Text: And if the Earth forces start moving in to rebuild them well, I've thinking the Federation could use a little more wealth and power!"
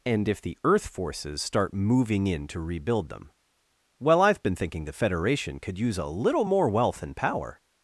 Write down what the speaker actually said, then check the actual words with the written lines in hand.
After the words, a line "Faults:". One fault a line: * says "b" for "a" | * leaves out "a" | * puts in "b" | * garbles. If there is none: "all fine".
And if the Earth forces start moving in to rebuild them well, I've been thinking the Federation could use a little more wealth and power!"
Faults:
* puts in "been"